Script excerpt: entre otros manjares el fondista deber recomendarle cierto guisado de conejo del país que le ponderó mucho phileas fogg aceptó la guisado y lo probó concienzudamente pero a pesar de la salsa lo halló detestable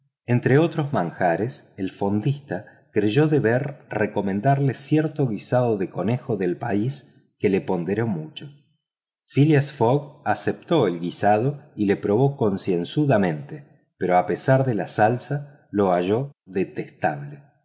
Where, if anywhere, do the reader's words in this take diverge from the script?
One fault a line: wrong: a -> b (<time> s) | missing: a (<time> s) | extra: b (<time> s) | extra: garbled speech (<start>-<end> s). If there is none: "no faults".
extra: creyó (2.9 s)
wrong: la -> el (10.9 s)